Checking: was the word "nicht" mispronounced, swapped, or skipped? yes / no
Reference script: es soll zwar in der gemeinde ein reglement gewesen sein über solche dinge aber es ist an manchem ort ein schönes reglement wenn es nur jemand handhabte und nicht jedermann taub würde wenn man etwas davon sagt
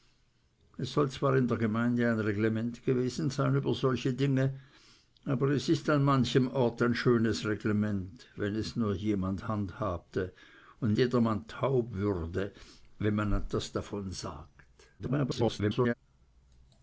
yes